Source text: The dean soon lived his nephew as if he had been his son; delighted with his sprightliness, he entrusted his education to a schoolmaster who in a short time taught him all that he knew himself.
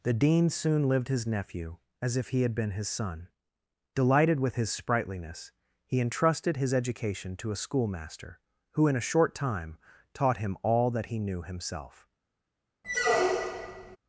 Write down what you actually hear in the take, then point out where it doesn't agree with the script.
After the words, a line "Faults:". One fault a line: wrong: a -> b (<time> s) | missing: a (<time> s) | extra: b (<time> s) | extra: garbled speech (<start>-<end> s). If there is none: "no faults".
The dean soon lived his nephew as if he had been his son; delighted with his sprightliness, he entrusted his education to a schoolmaster who in a short time taught him all that he knew himself.
Faults:
no faults